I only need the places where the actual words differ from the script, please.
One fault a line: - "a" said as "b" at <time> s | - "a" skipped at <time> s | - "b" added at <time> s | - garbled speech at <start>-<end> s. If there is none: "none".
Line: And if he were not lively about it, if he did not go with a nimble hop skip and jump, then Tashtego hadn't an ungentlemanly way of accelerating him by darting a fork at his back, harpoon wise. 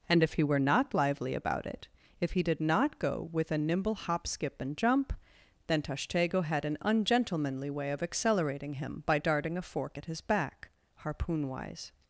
- "hadn't" said as "had" at 6.4 s